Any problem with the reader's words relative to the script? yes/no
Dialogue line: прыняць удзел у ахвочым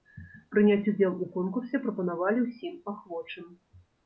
yes